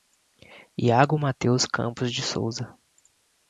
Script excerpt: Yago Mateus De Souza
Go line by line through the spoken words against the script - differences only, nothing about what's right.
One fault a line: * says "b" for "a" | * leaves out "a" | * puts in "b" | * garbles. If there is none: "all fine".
* puts in "Campos"